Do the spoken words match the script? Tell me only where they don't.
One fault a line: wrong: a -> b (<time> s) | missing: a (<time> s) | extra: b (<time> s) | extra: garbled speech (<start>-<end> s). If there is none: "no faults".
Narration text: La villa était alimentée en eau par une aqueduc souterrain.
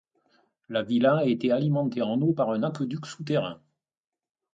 wrong: une -> un (2.5 s)